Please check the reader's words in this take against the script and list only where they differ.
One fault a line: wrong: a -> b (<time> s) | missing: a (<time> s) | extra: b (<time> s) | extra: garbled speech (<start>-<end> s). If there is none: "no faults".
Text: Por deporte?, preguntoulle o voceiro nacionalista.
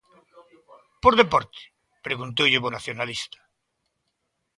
missing: voceiro (2.6 s)